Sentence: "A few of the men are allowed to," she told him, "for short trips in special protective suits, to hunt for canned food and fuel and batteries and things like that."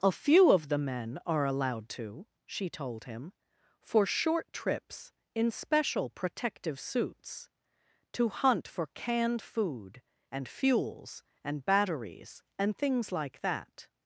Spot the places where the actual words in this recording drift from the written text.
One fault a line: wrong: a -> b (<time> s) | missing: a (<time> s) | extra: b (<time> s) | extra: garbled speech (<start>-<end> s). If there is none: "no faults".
wrong: fuel -> fuels (10.5 s)